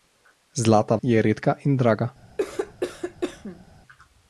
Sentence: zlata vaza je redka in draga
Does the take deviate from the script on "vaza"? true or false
true